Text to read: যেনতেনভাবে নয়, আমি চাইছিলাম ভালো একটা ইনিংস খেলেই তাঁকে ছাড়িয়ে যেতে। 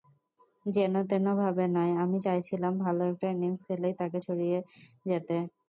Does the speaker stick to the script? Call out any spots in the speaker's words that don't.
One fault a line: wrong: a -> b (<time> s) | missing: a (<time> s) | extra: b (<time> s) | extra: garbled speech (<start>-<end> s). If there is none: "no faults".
no faults